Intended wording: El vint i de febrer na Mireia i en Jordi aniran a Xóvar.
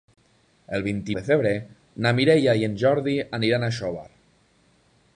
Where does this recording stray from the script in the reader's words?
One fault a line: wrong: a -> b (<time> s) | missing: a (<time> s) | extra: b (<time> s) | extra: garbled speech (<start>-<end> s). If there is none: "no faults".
no faults